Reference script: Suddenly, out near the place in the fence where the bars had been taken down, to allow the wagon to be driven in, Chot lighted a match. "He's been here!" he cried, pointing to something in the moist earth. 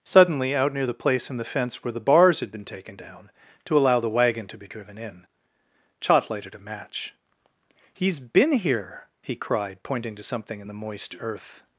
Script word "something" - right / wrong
right